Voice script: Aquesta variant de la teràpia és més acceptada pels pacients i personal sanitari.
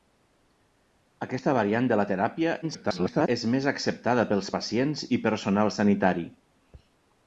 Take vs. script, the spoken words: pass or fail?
fail